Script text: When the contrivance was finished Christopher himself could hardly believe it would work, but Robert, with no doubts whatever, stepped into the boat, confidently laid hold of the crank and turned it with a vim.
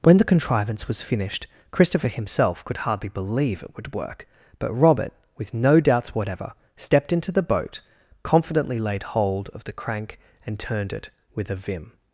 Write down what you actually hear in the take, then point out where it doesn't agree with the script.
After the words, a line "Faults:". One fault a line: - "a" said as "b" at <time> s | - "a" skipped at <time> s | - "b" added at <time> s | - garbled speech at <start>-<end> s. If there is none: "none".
When the contrivance was finished Christopher himself could hardly believe it would work, but Robert, with no doubts whatever, stepped into the boat, confidently laid hold of the crank and turned it with a vim.
Faults:
none